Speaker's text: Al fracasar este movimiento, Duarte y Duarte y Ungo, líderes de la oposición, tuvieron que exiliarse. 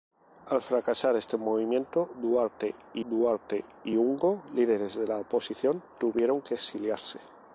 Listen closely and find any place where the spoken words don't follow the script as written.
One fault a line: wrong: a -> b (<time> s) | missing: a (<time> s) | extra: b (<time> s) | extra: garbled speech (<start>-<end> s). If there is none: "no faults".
no faults